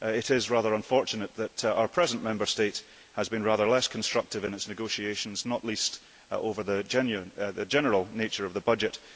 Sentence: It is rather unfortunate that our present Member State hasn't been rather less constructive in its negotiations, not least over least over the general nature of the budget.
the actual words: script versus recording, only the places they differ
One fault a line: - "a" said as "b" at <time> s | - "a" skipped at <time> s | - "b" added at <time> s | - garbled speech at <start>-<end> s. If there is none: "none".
- "hasn't" said as "has" at 3.1 s
- "least over" skipped at 6.6 s